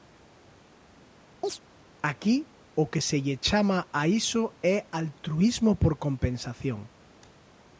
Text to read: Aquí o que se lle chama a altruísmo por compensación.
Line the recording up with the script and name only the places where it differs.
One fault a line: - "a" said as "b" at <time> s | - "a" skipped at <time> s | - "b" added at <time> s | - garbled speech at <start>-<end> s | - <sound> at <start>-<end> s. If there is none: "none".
- chirp at 1.4-1.6 s
- "iso é" added at 4.1 s